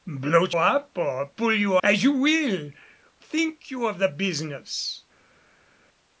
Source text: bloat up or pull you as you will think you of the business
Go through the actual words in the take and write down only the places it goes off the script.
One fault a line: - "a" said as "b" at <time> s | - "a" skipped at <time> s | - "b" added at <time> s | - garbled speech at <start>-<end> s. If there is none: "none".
none